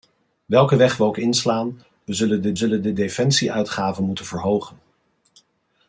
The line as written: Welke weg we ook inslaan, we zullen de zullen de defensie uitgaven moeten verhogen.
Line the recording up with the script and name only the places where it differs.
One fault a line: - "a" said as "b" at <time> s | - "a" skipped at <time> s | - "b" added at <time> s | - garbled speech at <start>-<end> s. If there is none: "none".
none